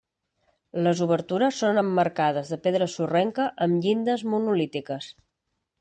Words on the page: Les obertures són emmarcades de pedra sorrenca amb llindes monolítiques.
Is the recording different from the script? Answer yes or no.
no